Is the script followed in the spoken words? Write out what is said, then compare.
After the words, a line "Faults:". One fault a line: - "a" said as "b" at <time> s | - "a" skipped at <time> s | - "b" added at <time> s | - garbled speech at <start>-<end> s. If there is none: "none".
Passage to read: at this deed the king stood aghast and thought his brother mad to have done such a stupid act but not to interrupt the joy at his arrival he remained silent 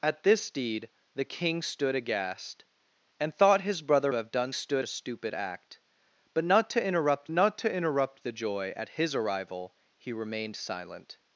at this deed the king stood aghast and thought his brother have done stood a stupid act but not to interrupt not to interrupt the joy at his arrival he remained silent
Faults:
- "mad to" skipped at 4.1 s
- "such" said as "stood" at 4.5 s
- "not to interrupt" added at 7.3 s